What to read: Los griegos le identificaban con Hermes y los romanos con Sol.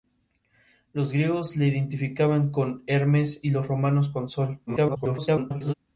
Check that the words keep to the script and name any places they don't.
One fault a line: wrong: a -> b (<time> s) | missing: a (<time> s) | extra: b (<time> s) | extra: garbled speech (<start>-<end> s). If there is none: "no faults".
extra: garbled speech (4.7-5.7 s)